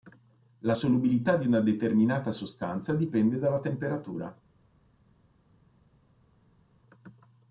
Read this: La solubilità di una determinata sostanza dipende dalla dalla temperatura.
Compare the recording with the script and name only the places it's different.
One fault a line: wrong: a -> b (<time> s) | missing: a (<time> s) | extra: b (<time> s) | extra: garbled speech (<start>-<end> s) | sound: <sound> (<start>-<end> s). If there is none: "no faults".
missing: dalla (3.6 s)